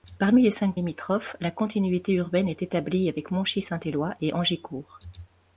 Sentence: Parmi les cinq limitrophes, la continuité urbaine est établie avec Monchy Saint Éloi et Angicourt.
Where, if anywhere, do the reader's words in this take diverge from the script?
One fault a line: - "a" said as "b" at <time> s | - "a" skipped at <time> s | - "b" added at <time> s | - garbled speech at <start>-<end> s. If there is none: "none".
none